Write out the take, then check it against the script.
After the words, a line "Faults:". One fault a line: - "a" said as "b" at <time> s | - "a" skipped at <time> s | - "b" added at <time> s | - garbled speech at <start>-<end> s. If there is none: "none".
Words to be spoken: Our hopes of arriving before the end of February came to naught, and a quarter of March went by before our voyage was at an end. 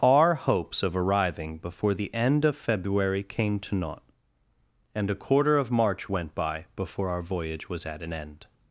Our hopes of arriving before the end of February came to naught, and a quarter of March went by before our voyage was at an end.
Faults:
none